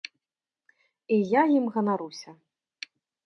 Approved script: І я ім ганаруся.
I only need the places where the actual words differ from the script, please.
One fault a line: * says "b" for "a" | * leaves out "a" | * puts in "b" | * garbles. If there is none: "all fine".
all fine